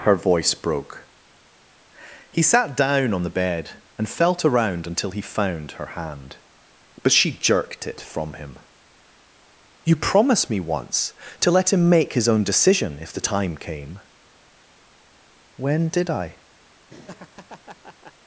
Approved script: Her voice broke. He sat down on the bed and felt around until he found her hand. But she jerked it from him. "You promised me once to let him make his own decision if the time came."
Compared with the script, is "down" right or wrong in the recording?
right